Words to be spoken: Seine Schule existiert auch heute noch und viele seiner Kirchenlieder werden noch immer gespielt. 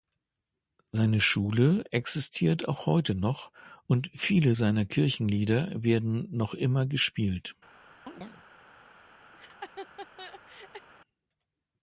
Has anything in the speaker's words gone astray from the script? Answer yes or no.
no